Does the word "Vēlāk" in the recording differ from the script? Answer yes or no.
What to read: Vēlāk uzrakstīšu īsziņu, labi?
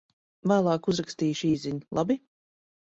no